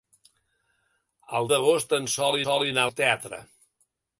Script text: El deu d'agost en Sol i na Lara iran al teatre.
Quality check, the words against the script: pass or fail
fail